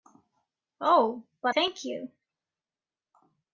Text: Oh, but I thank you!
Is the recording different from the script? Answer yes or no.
yes